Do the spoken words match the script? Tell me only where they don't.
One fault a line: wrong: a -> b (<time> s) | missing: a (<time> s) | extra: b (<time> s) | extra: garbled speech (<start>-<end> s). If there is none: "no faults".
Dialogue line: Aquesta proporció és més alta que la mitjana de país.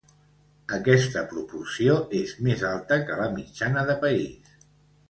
no faults